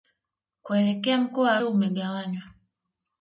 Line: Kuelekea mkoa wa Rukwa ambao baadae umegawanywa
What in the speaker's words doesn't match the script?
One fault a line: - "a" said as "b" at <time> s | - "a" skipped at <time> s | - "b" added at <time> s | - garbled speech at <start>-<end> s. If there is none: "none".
- "Rukwa ambao baadae" skipped at 1.6 s